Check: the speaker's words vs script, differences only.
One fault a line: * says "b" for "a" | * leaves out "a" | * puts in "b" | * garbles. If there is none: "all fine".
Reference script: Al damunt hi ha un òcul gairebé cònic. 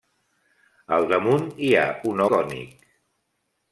* leaves out "òcul gairebé"